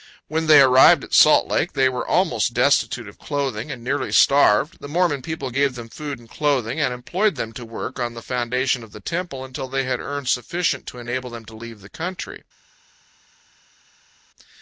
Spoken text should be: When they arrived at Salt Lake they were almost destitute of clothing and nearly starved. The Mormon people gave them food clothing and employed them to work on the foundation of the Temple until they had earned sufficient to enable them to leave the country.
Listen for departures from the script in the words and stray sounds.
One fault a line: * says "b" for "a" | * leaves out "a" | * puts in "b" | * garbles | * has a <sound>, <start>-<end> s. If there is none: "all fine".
* puts in "and"